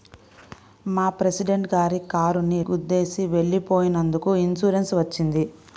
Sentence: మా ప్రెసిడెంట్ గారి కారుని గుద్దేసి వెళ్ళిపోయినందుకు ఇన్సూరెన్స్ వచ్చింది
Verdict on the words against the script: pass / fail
pass